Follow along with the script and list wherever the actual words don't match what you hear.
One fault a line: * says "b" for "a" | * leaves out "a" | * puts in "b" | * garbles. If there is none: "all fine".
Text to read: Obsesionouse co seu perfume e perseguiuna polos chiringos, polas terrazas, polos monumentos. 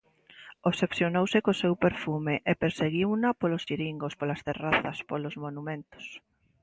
all fine